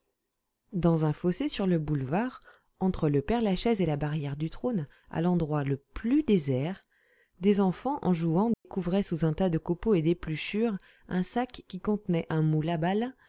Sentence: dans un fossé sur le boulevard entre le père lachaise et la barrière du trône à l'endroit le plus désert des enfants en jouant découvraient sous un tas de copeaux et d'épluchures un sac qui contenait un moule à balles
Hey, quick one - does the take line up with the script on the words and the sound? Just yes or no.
no